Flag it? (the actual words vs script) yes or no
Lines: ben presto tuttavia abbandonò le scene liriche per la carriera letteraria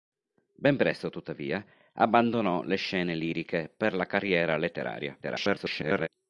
yes